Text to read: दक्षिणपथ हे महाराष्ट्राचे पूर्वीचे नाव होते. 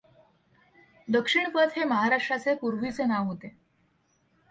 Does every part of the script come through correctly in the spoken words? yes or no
yes